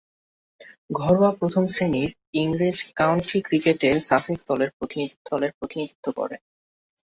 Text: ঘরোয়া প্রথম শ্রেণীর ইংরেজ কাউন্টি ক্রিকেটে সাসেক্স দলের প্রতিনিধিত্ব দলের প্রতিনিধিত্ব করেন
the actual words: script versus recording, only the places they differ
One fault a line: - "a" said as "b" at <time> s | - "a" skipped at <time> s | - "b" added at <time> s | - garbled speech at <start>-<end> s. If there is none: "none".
none